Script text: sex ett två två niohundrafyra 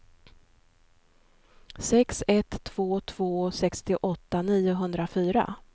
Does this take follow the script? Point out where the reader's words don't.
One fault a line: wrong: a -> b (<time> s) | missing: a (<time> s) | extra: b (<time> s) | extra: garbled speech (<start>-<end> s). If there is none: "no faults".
extra: sextioåtta (3.5 s)